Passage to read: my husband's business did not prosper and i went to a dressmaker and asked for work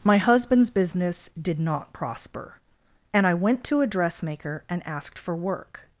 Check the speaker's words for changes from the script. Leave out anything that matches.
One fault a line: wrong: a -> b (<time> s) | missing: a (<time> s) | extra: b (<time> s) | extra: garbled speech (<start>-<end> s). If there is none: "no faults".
no faults